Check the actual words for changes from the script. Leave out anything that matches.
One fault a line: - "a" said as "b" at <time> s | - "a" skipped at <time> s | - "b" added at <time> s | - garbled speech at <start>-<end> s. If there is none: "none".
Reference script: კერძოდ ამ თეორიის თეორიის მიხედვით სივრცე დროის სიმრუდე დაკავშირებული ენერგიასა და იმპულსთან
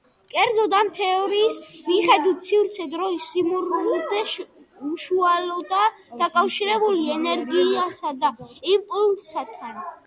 - "თეორიის" skipped at 1.6 s
- "უშუალოდაა" added at 4.9 s